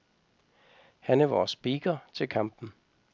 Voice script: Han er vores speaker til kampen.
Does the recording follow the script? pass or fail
pass